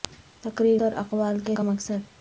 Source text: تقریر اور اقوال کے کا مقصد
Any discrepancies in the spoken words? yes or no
no